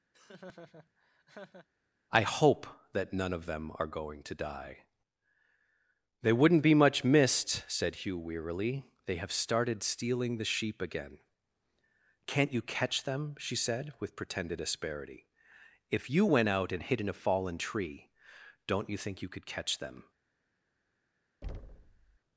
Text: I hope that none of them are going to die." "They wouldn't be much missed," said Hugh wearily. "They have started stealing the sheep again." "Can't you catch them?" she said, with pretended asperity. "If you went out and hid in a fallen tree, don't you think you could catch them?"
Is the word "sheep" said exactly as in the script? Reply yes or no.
yes